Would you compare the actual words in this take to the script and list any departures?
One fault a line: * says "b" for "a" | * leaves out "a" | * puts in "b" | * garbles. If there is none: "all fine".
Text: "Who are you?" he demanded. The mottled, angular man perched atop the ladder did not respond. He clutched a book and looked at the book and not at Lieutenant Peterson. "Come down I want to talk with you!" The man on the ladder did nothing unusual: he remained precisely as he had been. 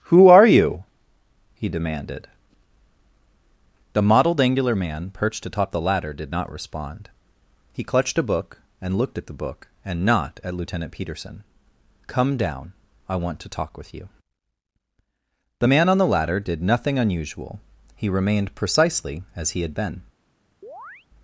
all fine